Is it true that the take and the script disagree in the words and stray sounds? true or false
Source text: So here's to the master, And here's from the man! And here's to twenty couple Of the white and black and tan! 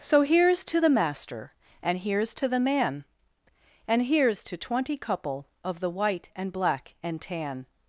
true